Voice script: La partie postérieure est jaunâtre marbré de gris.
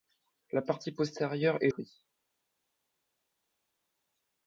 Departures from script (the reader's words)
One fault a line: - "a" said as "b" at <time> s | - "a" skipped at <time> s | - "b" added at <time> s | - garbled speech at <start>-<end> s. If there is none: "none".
- "jaunâtre marbré de" skipped at 1.7 s